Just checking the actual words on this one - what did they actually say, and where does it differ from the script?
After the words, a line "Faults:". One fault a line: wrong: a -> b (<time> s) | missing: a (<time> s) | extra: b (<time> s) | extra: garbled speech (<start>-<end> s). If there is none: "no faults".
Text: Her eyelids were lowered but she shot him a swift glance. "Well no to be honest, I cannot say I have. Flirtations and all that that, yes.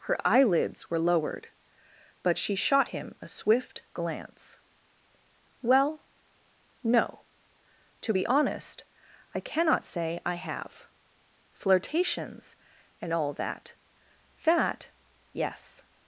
Her eyelids were lowered but she shot him a swift glance. "Well no to be honest, I cannot say I have. Flirtations and all that that, yes.
Faults:
no faults